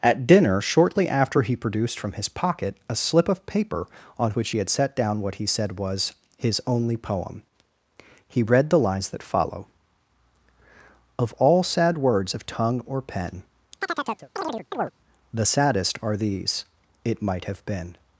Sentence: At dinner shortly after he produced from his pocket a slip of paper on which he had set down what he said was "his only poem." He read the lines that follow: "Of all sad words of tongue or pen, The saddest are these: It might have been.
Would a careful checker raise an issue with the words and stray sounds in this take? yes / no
yes